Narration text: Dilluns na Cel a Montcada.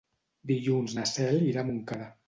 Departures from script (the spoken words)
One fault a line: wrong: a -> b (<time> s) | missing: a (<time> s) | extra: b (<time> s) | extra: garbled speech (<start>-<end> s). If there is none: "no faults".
extra: irà (1.5 s)